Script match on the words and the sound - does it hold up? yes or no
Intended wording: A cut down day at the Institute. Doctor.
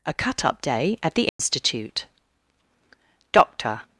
no